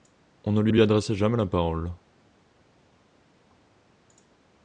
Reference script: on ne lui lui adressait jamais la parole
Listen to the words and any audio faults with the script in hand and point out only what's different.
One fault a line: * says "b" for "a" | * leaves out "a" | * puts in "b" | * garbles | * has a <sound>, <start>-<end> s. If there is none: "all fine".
all fine